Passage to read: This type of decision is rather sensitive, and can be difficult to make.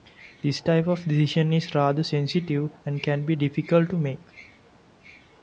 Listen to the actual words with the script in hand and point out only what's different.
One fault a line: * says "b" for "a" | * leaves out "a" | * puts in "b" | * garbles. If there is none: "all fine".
all fine